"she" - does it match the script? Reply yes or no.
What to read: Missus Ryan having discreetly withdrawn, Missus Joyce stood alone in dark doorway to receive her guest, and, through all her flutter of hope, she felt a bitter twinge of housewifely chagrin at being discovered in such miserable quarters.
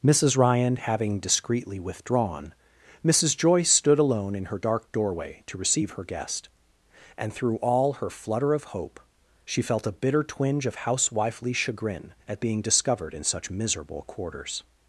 yes